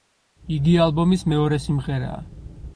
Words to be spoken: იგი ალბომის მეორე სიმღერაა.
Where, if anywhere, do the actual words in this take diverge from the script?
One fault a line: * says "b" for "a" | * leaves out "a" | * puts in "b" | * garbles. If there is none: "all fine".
all fine